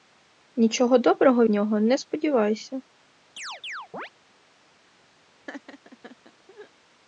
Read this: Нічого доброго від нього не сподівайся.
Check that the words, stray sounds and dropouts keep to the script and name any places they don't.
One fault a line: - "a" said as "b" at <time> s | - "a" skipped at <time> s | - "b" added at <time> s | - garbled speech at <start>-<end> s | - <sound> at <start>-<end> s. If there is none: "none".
- "від" skipped at 1.4 s
- chirp at 3.4-4.1 s
- laugh at 5.5-6.7 s